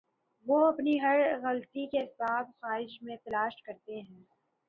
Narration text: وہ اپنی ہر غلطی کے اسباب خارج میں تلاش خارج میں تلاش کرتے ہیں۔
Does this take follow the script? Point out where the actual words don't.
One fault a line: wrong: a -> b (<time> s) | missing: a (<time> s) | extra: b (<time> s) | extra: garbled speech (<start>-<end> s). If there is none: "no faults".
missing: خارج میں تلاش (3.6 s)